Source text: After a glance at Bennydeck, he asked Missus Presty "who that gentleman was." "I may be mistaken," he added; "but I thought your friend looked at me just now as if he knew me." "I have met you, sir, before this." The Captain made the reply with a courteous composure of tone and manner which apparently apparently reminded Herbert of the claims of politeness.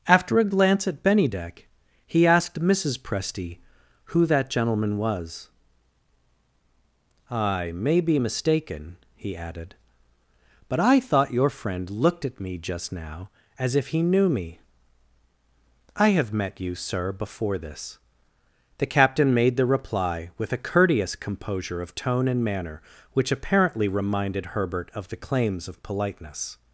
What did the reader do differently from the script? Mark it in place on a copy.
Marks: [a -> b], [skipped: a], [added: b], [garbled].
After a glance at Bennydeck, he asked Missus Presty "who that gentleman was." "I may be mistaken," he added; "but I thought your friend looked at me just now as if he knew me." "I have met you, sir, before this." The Captain made the reply with a courteous composure of tone and manner which apparently [skipped: apparently] reminded Herbert of the claims of politeness.